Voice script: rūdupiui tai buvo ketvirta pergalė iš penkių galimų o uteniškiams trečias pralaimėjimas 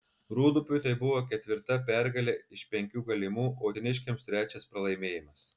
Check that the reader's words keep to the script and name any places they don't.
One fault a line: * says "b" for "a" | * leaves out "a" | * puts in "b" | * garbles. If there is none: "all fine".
all fine